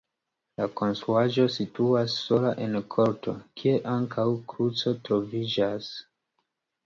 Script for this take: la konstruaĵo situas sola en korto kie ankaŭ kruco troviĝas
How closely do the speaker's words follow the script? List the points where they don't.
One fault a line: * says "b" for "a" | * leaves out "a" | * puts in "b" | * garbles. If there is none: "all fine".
all fine